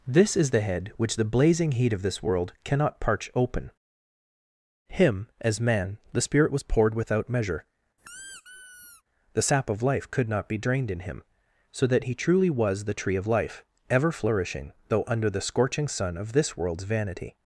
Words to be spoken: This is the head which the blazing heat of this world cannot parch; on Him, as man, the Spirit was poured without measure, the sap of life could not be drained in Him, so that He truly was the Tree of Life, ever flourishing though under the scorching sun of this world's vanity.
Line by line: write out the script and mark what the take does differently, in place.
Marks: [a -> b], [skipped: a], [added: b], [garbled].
This is the head which the blazing heat of this world cannot parch; [on -> open] Him, as man, the Spirit was poured without measure, the sap of life could not be drained in Him, so that He truly was the Tree of Life, ever flourishing though under the scorching sun of this world's vanity.